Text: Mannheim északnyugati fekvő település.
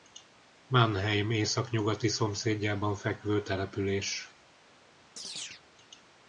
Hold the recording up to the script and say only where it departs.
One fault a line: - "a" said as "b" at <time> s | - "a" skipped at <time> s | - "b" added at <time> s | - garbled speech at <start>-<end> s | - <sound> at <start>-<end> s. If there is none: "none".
- "szomszédjában" added at 2.1 s
- chirp at 5.2-5.6 s